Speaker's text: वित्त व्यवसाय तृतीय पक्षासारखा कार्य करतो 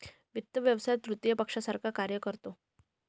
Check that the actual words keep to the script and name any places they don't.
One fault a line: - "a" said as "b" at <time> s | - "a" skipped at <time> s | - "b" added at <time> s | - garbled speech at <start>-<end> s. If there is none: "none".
none